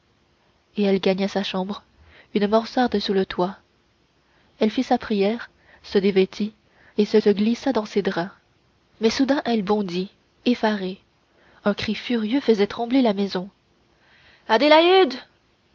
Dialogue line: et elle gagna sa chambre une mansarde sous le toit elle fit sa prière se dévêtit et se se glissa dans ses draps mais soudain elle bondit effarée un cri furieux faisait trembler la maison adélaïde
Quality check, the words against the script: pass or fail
pass